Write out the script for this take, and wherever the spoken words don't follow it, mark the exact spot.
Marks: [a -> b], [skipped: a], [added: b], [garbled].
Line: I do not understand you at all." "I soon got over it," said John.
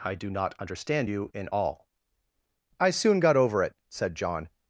I do not understand you [at -> in] all." "I soon got over it," said John.